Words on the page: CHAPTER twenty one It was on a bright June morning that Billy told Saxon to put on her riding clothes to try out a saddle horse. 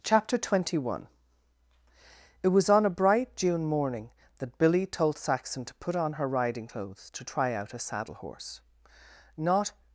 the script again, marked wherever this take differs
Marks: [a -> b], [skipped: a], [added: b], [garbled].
CHAPTER twenty one It was on a bright June morning that Billy told Saxon to put on her riding clothes to try out a saddle horse. [added: Not]